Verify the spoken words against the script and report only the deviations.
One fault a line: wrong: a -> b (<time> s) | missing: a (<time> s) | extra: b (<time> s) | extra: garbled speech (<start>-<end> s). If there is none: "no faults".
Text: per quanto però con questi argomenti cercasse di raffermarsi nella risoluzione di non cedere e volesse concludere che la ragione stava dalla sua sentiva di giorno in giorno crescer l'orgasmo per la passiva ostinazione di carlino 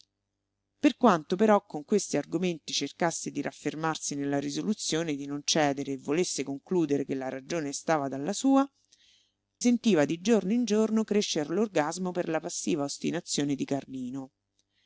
no faults